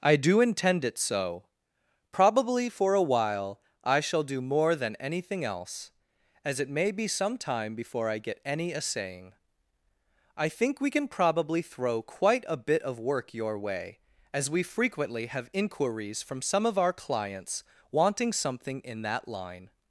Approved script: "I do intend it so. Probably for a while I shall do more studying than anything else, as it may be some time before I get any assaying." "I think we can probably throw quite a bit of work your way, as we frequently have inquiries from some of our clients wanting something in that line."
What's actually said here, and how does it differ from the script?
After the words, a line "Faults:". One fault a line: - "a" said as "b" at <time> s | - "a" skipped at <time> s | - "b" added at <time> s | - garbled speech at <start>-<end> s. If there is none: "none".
"I do intend it so. Probably for a while I shall do more than anything else, as it may be some time before I get any assaying." "I think we can probably throw quite a bit of work your way, as we frequently have inquiries from some of our clients wanting something in that line."
Faults:
- "studying" skipped at 4.8 s